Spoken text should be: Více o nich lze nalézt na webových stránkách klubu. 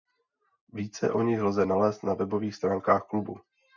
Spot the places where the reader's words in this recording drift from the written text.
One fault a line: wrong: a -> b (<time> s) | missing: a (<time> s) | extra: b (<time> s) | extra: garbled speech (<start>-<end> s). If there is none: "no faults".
no faults